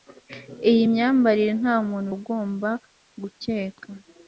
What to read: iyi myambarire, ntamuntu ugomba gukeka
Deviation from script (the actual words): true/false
false